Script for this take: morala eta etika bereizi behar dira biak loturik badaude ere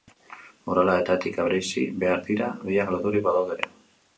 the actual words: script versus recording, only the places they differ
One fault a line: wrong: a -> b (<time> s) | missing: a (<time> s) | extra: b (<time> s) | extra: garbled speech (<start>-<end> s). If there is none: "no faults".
no faults